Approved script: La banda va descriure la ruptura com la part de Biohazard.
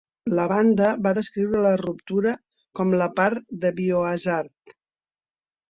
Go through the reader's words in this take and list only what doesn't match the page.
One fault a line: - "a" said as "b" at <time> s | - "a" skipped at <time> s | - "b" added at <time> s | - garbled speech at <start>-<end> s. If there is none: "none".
none